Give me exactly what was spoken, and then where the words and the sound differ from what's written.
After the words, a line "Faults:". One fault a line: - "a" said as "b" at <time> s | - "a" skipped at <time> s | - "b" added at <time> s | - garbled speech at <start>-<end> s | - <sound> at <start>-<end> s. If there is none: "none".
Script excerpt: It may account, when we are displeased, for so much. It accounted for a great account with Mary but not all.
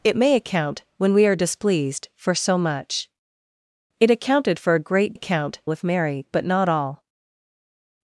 It may account, when we are displeased, for so much. It accounted for a great account with Mary but not all.
Faults:
none